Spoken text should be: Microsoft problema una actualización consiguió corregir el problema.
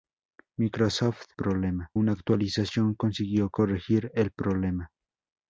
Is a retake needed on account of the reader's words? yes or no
no